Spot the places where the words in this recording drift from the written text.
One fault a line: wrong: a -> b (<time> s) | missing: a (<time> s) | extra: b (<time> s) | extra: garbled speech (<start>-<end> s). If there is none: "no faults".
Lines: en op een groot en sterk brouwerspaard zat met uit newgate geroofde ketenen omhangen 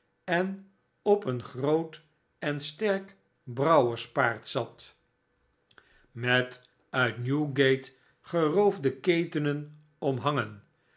no faults